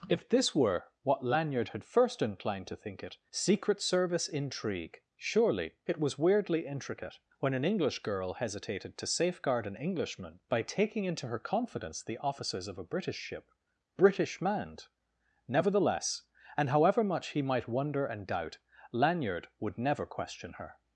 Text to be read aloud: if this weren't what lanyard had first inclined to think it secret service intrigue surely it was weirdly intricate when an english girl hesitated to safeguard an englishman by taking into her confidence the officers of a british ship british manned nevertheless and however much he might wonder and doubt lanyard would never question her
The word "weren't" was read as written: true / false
false